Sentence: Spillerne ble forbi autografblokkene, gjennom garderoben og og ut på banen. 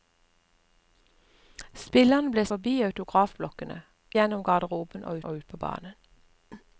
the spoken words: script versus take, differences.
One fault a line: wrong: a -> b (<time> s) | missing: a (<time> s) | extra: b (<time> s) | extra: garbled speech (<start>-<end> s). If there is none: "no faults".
no faults